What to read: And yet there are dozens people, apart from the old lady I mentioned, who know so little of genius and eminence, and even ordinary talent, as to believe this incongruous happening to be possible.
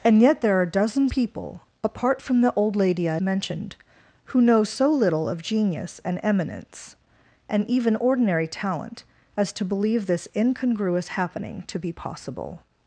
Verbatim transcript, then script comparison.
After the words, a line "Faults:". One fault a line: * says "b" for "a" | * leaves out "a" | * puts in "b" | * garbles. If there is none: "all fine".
And yet there are dozens people, apart from the old lady I mentioned, who know so little of genius and eminence, and even ordinary talent, as to believe this incongruous happening to be possible.
Faults:
all fine